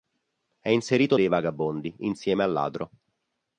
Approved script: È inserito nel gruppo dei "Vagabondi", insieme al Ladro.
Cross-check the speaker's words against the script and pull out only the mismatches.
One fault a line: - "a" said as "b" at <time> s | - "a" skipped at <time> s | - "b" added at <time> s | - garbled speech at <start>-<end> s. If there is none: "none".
- "nel gruppo" skipped at 1.2 s